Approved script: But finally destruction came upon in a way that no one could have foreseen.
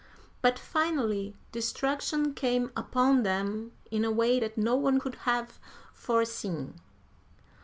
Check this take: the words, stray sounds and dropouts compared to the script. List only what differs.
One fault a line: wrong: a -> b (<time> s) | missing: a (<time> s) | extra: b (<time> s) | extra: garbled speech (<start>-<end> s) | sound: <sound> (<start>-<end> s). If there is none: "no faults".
extra: them (3.2 s)